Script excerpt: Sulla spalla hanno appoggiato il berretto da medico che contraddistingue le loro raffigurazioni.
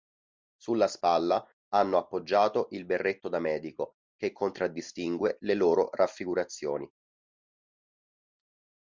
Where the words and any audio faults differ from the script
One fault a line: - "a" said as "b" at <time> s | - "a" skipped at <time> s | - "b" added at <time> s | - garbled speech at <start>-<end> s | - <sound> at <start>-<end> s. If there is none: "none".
none